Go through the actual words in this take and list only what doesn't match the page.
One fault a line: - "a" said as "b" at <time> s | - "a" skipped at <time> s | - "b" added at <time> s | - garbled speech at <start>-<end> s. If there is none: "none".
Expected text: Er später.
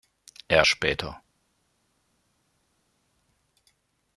none